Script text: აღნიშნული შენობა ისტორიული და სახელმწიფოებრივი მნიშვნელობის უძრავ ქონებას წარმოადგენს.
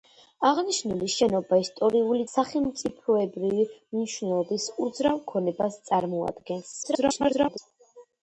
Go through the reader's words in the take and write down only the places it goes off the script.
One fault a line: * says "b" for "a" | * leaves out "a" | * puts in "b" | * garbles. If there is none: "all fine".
* leaves out "და"
* garbles